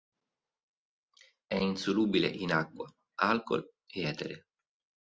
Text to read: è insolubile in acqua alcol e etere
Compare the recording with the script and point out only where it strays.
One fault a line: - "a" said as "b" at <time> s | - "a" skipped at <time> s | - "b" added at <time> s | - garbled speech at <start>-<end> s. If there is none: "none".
none